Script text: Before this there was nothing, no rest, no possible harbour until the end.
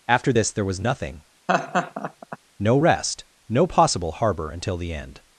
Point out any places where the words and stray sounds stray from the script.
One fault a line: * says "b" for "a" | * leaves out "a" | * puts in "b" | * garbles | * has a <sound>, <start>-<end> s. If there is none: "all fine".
* says "After" for "Before"
* has a laugh, 1.5-2.4 s